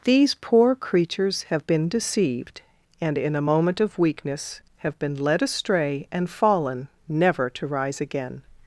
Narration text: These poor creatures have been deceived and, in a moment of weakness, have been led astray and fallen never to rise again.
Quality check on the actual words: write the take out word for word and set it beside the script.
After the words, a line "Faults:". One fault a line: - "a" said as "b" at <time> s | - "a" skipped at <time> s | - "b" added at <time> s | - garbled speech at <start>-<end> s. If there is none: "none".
These poor creatures have been deceived and, in a moment of weakness, have been led astray and fallen never to rise again.
Faults:
none